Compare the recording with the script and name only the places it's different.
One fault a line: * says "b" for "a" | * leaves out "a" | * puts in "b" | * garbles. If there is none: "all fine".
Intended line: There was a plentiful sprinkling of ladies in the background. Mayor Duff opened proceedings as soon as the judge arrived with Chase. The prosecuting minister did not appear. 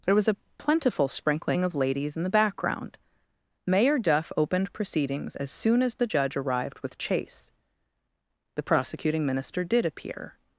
* leaves out "not"